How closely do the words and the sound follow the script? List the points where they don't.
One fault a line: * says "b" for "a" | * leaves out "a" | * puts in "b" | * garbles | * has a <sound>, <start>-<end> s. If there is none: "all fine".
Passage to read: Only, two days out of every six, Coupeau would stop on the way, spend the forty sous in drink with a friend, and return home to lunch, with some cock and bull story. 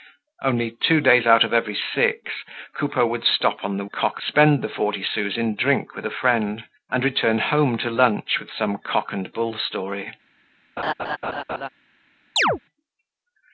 * says "cock" for "way"
* has a laugh, 10.8-11.7 s
* has a chirp, 12.4-12.6 s